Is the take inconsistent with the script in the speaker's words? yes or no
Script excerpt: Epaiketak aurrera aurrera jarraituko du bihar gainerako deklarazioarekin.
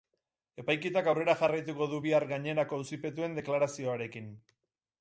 yes